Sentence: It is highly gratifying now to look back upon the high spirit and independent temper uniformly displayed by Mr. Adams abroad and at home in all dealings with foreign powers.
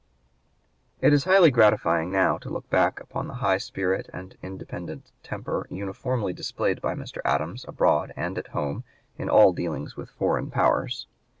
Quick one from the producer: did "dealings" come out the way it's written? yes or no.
yes